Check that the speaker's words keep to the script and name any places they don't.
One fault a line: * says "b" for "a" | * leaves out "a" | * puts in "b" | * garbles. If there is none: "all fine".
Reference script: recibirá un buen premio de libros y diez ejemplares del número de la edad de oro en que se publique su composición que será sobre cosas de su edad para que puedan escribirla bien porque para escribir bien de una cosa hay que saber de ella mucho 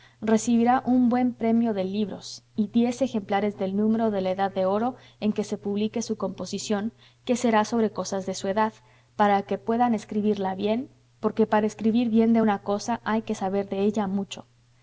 all fine